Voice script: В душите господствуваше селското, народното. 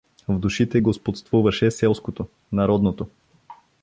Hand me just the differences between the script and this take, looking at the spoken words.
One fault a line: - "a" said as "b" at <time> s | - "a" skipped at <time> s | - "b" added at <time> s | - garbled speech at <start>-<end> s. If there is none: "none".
none